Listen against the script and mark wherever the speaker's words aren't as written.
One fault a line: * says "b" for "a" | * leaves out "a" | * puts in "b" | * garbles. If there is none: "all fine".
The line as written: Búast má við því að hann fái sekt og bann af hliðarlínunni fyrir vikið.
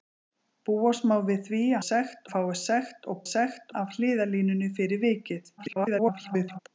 * says "sekt" for "hann"
* says "sekt" for "bann"
* garbles